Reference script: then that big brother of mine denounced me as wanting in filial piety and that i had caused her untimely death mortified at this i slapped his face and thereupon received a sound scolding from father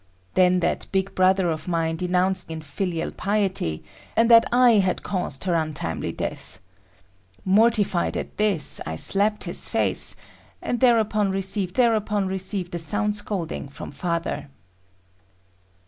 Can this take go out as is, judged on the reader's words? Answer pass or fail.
fail